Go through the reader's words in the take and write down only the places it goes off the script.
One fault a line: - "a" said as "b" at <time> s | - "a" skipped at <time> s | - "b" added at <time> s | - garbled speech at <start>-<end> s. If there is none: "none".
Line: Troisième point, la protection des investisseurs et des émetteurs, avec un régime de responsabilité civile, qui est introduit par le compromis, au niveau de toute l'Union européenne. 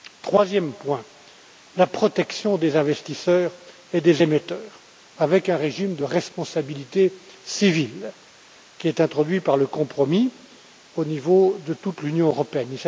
none